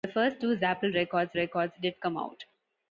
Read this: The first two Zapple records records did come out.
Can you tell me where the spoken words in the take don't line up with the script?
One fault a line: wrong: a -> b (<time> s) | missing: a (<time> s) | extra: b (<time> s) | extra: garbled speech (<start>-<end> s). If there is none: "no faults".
no faults